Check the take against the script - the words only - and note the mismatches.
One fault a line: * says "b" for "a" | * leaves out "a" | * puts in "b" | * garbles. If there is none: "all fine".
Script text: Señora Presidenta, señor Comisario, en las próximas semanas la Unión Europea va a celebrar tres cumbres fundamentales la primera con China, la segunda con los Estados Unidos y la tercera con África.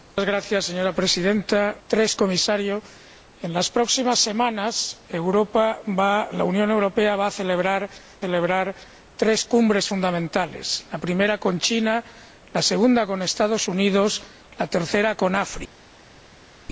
* says "tres" for "señor"
* puts in "celebrar"